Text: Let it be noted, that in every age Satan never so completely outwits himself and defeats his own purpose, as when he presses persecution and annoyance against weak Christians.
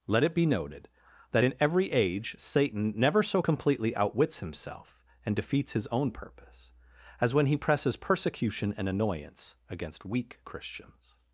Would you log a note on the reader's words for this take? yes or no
no